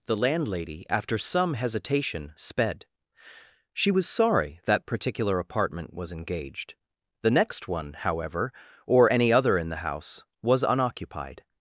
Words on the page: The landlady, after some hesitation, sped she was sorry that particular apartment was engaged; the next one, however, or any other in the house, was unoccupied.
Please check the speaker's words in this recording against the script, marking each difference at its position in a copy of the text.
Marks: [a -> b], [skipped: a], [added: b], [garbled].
The landlady, after some hesitation, sped she was sorry that particular apartment was engaged; the next one, however, or any other in the house, was unoccupied.